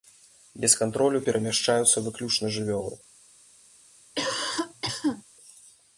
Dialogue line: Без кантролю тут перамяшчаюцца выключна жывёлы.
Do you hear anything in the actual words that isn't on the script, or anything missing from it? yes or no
yes